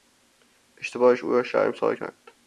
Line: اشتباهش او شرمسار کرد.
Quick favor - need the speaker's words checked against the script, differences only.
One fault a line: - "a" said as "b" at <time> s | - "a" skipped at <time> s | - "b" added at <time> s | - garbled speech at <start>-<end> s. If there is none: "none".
- "را" added at 1.3 s